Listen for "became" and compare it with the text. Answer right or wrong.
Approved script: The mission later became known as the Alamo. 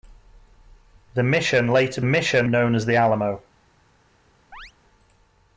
wrong